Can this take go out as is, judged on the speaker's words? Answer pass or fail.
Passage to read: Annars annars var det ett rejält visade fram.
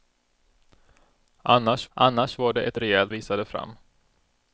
pass